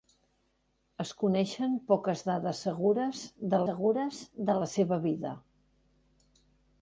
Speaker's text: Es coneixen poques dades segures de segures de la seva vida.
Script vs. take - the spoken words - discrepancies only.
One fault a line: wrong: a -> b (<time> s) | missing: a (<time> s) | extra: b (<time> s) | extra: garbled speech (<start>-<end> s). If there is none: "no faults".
no faults